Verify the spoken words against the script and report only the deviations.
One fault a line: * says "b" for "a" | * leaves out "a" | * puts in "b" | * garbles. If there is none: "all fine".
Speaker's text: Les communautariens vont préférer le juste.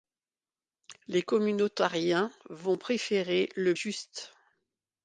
all fine